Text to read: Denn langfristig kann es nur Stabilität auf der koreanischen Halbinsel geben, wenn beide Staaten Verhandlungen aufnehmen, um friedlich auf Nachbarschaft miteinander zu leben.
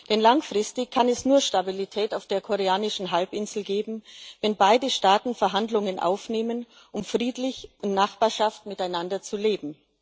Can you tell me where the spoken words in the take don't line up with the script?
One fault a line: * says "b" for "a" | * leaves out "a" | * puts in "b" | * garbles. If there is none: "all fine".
* says "in" for "auf"